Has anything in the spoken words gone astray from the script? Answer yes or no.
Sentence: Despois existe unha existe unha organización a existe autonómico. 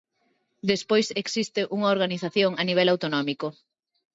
yes